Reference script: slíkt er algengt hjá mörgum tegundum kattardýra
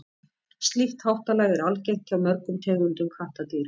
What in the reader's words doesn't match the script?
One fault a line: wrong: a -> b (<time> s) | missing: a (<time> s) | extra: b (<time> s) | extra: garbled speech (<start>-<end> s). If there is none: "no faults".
extra: háttalag (1.1 s)